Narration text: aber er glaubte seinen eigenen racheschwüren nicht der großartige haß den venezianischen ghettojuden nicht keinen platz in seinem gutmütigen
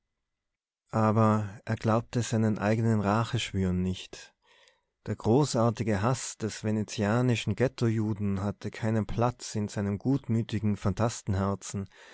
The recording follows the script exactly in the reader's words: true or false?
false